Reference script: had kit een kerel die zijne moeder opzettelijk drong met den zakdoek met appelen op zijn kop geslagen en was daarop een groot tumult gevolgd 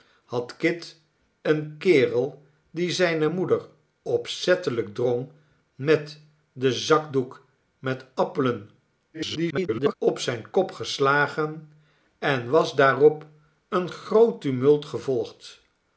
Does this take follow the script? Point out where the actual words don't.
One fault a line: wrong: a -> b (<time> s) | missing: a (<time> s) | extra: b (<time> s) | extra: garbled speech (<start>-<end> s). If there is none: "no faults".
extra: garbled speech (9.1-9.9 s)